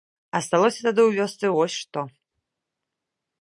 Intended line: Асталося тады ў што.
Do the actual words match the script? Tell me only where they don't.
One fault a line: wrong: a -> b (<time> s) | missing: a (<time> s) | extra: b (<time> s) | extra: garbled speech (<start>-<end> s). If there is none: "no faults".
extra: вёсцы вось (1.2 s)